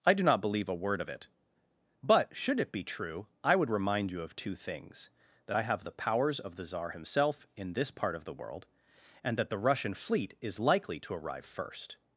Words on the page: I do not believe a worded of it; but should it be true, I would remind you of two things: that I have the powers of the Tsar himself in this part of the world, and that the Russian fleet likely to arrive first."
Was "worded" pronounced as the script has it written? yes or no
no